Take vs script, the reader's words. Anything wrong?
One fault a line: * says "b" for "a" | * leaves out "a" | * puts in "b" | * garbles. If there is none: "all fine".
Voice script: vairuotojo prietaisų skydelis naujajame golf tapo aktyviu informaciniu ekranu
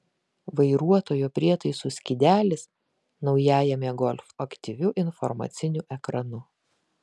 * leaves out "tapo"